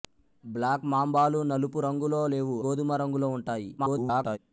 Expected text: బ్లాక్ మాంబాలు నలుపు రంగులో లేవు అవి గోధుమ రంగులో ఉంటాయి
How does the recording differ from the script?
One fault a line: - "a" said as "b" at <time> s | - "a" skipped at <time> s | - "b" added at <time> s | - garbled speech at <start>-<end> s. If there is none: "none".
- "అవి" skipped at 2.6 s
- garbled speech at 3.8-4.4 s